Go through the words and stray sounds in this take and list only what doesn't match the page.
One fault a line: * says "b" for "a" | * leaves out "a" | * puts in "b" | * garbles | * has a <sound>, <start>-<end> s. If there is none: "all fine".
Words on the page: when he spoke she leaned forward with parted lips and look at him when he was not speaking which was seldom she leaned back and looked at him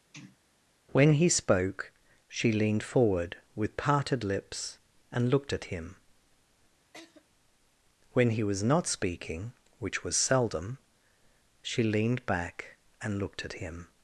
* has a sneeze, 0.1-0.4 s
* says "looked" for "look"
* has a laugh, 6.9-7.3 s